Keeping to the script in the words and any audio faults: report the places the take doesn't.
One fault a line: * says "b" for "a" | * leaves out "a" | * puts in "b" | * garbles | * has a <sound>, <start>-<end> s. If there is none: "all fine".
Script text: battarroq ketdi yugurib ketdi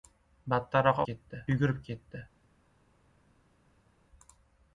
all fine